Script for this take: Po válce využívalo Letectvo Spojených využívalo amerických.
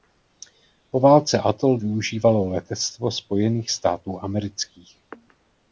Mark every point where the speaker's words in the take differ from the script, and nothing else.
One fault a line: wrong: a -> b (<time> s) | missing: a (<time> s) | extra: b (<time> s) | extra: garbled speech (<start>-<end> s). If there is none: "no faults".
extra: atol (1.4 s)
wrong: využívalo -> států (3.7 s)